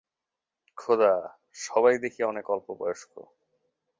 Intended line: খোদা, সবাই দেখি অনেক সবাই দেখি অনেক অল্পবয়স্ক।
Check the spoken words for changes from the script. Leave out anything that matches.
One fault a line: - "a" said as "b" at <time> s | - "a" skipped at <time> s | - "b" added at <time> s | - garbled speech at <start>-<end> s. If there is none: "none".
- "সবাই দেখি অনেক" skipped at 2.5 s